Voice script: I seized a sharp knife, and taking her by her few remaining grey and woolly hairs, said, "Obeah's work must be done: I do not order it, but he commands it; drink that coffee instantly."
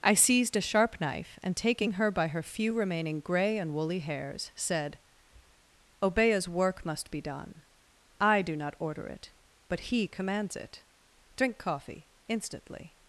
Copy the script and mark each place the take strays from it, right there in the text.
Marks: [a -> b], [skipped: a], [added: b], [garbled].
I seized a sharp knife, and taking her by her few remaining grey and woolly hairs, said, "Obeah's work must be done: I do not order it, but he commands it; drink [skipped: that] coffee instantly."